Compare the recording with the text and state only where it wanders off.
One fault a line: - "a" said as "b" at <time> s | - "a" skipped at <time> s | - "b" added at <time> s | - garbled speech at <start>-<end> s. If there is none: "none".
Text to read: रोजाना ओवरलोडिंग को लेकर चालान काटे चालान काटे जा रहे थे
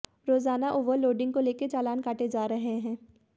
- "चालान काटे" skipped at 2.3 s
- "थे" said as "हैं" at 2.8 s